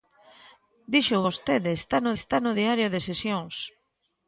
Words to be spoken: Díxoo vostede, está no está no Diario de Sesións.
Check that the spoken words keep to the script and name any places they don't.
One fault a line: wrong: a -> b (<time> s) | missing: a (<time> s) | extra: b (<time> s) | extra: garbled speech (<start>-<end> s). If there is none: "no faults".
no faults